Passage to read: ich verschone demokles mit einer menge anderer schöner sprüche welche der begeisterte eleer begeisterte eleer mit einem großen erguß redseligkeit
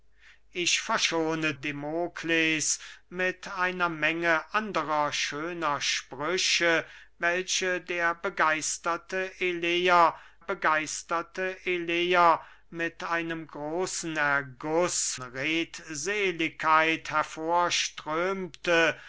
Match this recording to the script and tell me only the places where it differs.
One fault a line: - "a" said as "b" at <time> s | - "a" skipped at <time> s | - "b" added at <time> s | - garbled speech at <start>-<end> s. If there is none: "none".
none